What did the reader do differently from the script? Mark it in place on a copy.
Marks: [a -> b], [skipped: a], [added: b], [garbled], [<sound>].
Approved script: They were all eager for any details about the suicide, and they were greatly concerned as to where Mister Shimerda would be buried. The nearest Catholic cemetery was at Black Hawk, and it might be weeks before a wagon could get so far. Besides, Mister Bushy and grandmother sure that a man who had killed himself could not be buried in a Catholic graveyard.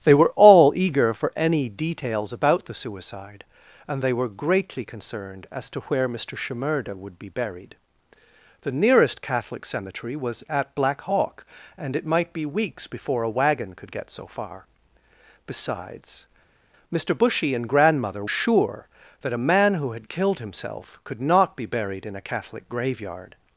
They were all eager for any details about the suicide, and they were greatly concerned as to where Mister Shimerda would be buried. The nearest Catholic cemetery was at Black Hawk, and it might be weeks before a wagon could get so far. Besides, Mister Bushy and grandmother sure that a man who had killed himself could not be buried in a Catholic graveyard.